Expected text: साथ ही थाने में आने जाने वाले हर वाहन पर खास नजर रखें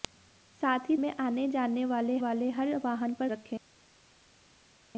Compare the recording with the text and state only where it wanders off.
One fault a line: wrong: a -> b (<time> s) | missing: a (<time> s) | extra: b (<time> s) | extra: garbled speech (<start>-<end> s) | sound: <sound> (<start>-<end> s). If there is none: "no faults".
missing: थाने (0.9 s)
extra: वाले (2.2 s)
missing: खास नजर (3.3 s)